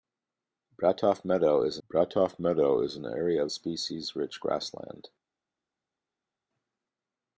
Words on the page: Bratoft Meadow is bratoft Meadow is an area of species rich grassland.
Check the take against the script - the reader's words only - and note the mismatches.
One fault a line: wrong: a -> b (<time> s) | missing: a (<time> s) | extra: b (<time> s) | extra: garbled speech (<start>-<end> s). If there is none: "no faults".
no faults